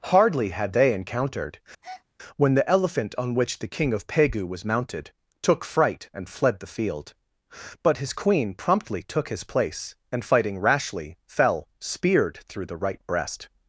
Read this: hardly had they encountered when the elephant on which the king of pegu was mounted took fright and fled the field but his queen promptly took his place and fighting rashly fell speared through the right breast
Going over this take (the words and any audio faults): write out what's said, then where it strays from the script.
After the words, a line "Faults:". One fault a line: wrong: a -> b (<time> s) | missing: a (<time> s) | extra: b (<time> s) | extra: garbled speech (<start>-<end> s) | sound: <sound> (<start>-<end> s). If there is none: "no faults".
hardly had they encountered when the elephant on which the king of pegu was mounted took fright and fled the field but his queen promptly took his place and fighting rashly fell speared through the right breast
Faults:
sound: breath (1.8-2.0 s)